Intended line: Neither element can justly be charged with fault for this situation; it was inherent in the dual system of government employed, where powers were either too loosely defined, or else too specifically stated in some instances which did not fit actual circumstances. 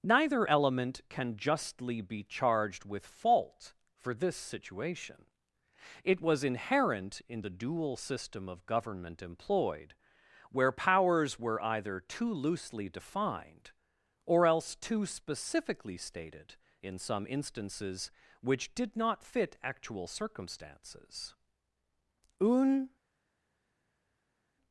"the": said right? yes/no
yes